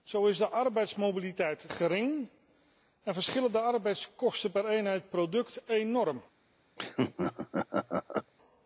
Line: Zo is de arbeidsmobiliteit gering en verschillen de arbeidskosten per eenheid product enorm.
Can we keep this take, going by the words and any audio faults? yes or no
no